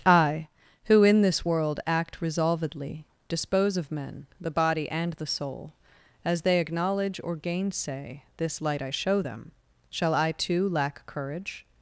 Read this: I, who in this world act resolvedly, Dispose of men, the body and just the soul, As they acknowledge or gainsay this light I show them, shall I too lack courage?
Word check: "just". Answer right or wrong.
wrong